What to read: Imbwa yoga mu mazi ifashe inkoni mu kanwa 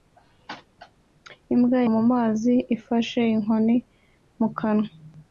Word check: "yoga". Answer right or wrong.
wrong